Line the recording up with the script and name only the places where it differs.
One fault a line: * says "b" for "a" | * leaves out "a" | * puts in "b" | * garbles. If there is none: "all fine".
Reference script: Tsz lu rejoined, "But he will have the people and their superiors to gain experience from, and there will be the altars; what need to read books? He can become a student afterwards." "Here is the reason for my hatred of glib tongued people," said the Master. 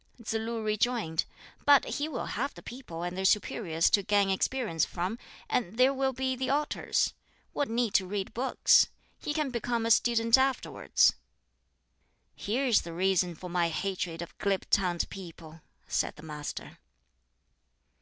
all fine